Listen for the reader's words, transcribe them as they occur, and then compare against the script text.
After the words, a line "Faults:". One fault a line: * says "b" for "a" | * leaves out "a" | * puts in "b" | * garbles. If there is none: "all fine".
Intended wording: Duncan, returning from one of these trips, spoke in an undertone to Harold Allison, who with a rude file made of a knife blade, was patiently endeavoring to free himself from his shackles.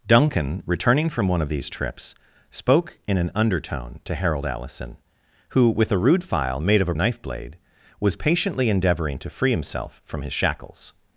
Duncan, returning from one of these trips, spoke in an undertone to Harold Allison, who with a rude file made of a knife blade, was patiently endeavoring to free himself from his shackles.
Faults:
all fine